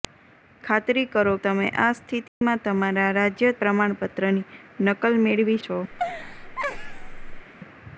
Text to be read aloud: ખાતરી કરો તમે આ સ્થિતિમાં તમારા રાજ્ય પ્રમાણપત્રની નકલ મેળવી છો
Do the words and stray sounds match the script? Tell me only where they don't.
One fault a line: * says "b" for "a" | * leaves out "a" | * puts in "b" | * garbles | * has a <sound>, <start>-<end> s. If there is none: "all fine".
* has a dropout, 2.3-2.4 s
* has a laugh, 5.9-7.5 s